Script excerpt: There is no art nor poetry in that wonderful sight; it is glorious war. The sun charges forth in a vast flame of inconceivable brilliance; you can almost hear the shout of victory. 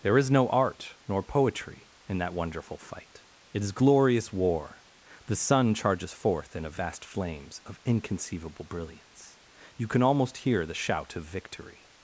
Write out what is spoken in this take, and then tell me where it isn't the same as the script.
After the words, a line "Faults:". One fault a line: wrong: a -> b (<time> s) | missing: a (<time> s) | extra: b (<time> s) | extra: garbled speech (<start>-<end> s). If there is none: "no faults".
There is no art nor poetry in that wonderful fight; it is glorious war. The sun charges forth in a vast flames of inconceivable brilliance; you can almost hear the shout of victory.
Faults:
wrong: sight -> fight (2.8 s)
wrong: flame -> flames (7.0 s)